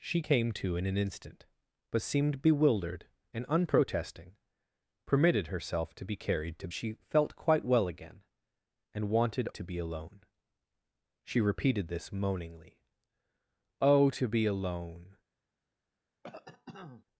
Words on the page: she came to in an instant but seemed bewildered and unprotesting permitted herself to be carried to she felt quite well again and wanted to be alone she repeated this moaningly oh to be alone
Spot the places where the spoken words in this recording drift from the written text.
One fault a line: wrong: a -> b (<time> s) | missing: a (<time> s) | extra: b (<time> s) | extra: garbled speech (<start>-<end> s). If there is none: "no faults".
no faults